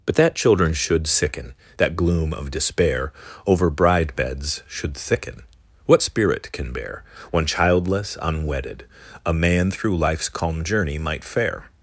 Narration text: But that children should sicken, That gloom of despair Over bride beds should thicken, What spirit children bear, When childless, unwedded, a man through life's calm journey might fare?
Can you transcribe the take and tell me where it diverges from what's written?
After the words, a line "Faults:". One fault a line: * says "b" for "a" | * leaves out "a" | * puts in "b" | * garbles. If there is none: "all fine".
But that children should sicken, That gloom of despair Over bride beds should thicken, What spirit can bear, When childless, unwedded, a man through life's calm journey might fare?
Faults:
* says "can" for "children"